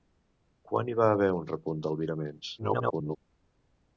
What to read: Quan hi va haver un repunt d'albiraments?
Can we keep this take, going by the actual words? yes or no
no